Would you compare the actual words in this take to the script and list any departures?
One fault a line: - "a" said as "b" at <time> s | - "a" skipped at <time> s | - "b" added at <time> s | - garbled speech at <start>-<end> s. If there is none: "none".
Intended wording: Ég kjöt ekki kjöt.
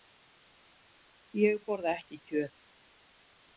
- "kjöt" said as "borða" at 1.7 s